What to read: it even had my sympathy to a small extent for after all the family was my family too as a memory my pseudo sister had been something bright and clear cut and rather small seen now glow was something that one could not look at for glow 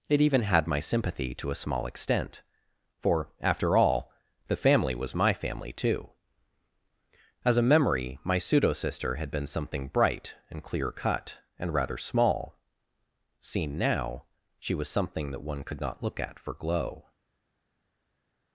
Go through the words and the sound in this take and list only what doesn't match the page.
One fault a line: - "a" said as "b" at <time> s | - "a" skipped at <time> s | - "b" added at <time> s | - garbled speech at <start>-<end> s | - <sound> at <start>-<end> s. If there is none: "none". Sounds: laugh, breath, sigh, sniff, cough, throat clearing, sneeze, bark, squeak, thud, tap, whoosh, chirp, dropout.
- "glow" said as "she" at 14.6 s